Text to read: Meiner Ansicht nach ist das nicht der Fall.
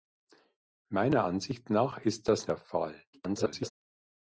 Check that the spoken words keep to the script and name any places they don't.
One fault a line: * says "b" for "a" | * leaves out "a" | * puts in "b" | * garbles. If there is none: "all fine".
* leaves out "nicht"
* garbles